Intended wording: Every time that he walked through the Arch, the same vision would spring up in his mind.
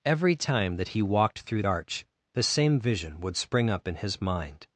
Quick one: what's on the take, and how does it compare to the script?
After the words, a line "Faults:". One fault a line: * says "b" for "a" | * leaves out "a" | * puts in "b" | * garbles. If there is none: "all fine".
Every time that he walked through Arch, the same vision would spring up in his mind.
Faults:
* leaves out "the"